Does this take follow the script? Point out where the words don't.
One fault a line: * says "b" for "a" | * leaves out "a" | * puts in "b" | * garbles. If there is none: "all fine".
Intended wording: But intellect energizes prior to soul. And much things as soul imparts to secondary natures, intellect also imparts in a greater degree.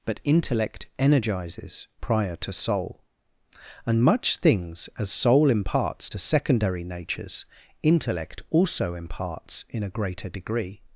all fine